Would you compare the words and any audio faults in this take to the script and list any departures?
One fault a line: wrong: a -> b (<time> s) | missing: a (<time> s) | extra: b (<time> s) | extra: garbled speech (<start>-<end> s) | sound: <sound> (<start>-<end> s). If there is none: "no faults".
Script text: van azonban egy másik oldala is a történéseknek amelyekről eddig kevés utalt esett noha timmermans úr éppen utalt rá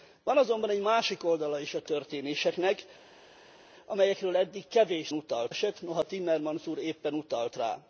no faults